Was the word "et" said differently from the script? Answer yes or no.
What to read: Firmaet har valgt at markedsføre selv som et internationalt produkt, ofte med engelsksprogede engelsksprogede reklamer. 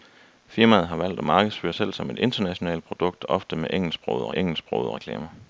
no